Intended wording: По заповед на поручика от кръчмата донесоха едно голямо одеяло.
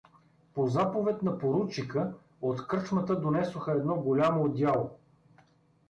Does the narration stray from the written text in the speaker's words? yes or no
no